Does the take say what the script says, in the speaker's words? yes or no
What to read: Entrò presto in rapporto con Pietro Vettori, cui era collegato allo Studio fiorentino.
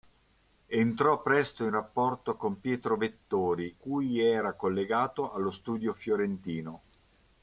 yes